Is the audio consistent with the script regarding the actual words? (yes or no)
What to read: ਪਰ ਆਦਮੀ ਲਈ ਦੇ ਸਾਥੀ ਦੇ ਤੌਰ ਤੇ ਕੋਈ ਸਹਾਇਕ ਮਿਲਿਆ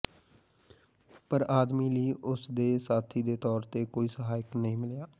no